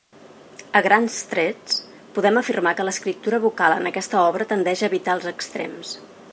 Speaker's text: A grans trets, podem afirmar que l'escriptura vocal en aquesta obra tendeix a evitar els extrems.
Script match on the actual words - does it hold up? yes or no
yes